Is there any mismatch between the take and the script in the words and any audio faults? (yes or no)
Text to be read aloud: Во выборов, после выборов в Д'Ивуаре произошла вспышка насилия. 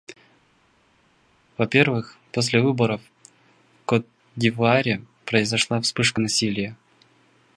yes